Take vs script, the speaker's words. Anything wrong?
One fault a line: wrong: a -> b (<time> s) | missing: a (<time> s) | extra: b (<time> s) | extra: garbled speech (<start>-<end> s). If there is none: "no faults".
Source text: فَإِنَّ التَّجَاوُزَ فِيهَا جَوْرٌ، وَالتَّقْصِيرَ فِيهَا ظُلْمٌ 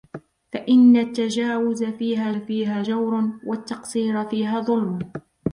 extra: فِيهَا (2.3 s)